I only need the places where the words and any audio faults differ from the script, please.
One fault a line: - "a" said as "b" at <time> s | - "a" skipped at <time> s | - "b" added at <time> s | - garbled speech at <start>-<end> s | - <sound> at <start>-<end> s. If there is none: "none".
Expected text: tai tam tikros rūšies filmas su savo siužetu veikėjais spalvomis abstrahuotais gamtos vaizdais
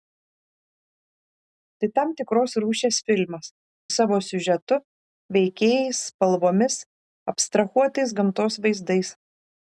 - "su" skipped at 3.5 s